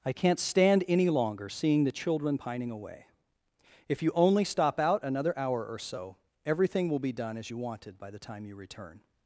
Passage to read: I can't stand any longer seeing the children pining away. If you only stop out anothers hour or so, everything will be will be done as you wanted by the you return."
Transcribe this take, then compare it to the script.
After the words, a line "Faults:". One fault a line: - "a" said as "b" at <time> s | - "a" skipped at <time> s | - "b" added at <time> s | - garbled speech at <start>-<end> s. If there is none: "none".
I can't stand any longer seeing the children pining away. If you only stop out another hour or so, everything will be done as you wanted by the time you return."
Faults:
- "anothers" said as "another" at 5.0 s
- "will be" skipped at 7.1 s
- "time" added at 8.2 s